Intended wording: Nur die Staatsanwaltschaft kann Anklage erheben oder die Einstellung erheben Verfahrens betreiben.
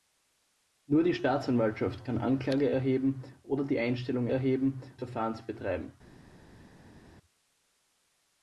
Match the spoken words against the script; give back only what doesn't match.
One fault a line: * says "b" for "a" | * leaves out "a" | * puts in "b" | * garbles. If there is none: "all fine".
all fine